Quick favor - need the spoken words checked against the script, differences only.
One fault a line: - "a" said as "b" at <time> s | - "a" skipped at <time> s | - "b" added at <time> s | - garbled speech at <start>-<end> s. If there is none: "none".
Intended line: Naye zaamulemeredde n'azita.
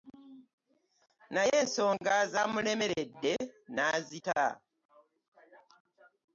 - "ensonga" added at 1.6 s